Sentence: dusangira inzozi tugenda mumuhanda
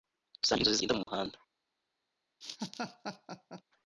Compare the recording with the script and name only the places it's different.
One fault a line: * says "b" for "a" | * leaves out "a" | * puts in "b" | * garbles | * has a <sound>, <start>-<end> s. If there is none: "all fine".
* has a dropout, 1.0-1.1 s
* has a laugh, 2.4-3.6 s